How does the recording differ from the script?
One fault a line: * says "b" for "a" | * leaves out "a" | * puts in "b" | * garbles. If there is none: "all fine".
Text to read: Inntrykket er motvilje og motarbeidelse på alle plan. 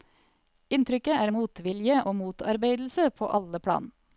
all fine